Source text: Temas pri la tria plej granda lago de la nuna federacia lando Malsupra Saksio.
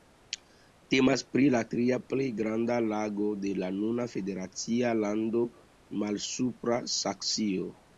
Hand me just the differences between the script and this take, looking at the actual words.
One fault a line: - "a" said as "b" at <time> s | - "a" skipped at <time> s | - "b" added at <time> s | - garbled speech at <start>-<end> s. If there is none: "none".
none